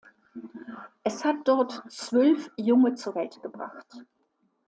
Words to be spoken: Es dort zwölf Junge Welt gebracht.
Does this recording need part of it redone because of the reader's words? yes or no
yes